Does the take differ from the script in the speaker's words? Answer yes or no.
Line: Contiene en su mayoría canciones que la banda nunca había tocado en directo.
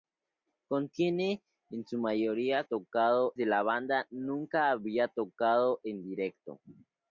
yes